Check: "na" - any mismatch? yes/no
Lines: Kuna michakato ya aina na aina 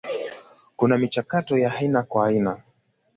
yes